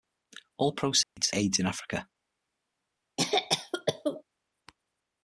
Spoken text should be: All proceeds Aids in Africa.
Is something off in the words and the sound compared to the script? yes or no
yes